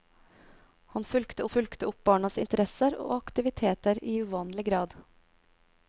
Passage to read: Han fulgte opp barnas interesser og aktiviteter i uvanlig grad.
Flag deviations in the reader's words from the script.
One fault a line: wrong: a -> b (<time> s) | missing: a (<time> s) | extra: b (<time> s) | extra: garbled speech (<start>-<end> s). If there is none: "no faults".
extra: fulgte (1.4 s)